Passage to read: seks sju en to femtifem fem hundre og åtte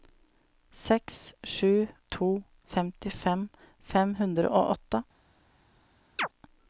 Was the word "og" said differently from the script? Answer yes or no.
no